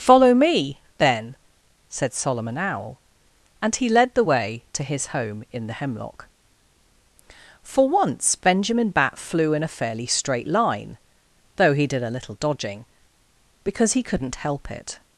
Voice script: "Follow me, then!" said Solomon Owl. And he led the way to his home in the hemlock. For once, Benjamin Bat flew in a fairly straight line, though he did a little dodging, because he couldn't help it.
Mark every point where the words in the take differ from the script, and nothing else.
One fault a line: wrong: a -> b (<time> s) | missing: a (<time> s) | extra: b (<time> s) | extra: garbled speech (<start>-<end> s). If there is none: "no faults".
no faults